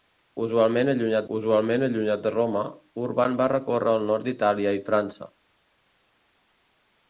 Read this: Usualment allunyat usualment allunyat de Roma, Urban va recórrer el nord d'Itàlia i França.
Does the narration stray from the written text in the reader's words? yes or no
no